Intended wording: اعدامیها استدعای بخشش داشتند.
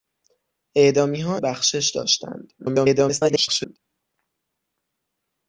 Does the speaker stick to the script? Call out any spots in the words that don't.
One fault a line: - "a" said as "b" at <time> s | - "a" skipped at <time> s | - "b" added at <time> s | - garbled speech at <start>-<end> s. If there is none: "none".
- "استدعای" skipped at 1.4 s
- garbled speech at 2.6-3.8 s